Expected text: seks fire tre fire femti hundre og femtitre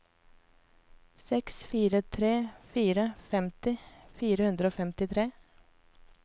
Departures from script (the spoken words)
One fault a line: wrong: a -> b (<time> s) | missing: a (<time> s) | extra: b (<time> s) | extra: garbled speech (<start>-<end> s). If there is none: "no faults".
extra: fire (4.2 s)